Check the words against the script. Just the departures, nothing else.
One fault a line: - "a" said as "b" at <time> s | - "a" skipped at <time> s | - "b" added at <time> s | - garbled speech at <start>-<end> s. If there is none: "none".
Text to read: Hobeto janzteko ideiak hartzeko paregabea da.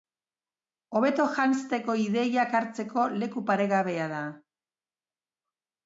- "leku" added at 3.2 s